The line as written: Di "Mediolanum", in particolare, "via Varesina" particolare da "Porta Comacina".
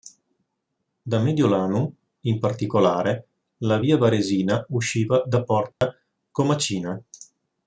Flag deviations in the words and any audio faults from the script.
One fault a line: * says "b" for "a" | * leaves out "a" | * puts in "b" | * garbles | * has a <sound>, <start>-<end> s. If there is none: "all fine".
* says "Da" for "Di"
* puts in "la"
* says "usciva" for "particolare"
* has a dropout, 5.7-5.8 s